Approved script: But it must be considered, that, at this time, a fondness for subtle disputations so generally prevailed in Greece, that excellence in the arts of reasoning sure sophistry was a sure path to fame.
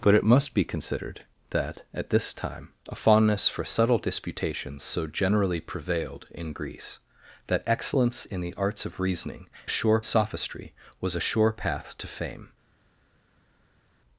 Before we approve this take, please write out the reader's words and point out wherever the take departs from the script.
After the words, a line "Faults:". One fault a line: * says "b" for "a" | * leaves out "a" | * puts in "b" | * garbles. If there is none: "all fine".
But it must be considered, that, at this time, a fondness for subtle disputations so generally prevailed in Greece, that excellence in the arts of reasoning sure sophistry was a sure path to fame.
Faults:
all fine